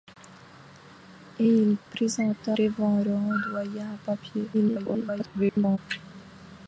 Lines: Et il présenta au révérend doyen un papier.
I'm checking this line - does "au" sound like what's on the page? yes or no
no